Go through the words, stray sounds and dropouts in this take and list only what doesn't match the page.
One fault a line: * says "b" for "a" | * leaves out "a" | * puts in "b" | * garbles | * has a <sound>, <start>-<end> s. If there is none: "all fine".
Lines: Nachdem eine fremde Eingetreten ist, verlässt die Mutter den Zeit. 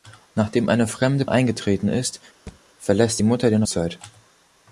* has a thud, 2.5-2.6 s